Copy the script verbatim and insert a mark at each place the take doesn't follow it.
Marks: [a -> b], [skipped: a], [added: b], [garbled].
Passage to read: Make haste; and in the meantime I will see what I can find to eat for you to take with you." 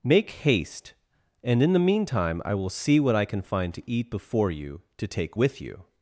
Make haste; and in the meantime I will see what I can find to eat [for -> before] you to take with you."